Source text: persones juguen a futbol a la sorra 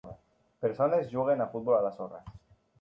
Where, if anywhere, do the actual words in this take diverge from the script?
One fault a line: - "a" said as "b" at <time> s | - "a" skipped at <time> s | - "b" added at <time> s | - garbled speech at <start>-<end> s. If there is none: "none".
none